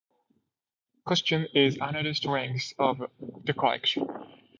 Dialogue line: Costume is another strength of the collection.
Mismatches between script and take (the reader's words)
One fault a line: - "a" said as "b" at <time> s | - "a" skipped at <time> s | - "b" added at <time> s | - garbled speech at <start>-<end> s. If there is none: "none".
none